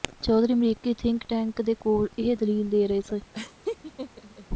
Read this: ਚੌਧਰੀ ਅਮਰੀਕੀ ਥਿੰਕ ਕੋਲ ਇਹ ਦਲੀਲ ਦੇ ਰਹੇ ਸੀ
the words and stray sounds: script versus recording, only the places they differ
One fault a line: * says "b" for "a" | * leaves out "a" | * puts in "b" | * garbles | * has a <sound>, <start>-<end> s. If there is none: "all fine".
* puts in "ਟੈਂਕ ਦੇ"
* has a laugh, 3.3-4.5 s